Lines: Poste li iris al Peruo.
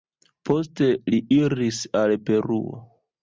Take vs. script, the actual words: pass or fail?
pass